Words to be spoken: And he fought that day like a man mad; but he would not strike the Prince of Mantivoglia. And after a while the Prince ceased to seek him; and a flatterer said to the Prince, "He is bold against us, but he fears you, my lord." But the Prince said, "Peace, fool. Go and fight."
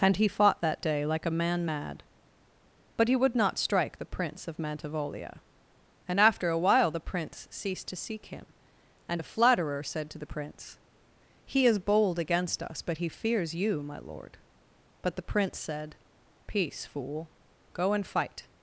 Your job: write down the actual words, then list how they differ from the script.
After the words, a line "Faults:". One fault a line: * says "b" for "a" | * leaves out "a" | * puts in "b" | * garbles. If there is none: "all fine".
And he fought that day like a man mad; but he would not strike the Prince of Mantivoglia. And after a while the Prince ceased to seek him; and a flatterer said to the Prince, "He is bold against us, but he fears you, my lord." But the Prince said, "Peace, fool. Go and fight."
Faults:
all fine